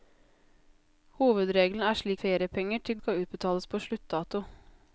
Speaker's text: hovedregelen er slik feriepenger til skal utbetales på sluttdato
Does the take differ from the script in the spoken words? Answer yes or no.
no